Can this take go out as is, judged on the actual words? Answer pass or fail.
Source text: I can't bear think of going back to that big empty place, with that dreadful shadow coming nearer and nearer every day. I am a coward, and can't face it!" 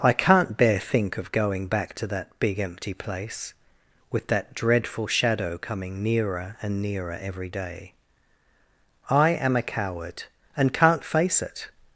pass